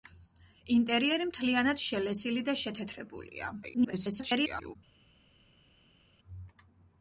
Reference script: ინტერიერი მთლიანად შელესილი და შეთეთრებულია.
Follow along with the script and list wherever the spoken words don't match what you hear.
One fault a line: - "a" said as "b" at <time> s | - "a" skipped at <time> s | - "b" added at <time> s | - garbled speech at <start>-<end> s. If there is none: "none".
- garbled speech at 3.6-4.8 s